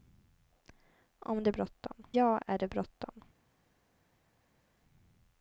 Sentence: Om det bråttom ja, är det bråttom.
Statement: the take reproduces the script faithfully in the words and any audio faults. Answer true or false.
true